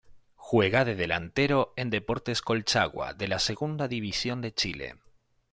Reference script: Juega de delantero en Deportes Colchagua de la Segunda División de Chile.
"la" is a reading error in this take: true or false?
false